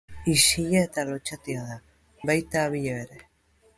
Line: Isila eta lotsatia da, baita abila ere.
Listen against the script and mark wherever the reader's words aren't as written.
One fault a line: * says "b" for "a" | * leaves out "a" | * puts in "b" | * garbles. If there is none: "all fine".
all fine